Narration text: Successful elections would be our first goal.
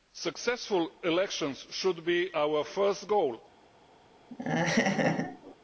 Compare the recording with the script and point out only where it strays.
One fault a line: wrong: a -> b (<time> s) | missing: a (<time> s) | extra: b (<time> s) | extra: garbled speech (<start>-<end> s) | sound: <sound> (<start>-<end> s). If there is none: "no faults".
wrong: would -> should (1.7 s)
sound: laugh (4.3-5.5 s)